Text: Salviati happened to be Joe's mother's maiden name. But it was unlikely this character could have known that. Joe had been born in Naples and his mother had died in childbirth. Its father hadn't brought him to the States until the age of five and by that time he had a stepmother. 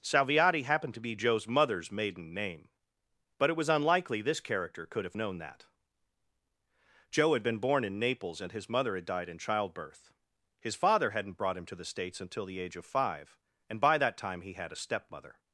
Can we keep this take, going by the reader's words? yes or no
no